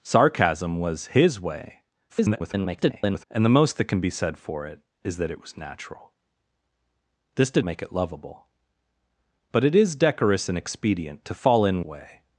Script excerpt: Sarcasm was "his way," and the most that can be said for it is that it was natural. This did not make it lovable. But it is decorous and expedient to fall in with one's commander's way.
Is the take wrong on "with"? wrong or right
wrong